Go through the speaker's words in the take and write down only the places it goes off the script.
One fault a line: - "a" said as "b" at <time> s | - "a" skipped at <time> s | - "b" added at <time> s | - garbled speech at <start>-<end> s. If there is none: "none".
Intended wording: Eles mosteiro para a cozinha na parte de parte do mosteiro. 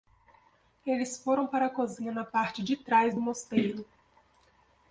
- "mosteiro" said as "foram" at 1.2 s
- "parte" said as "trás" at 2.8 s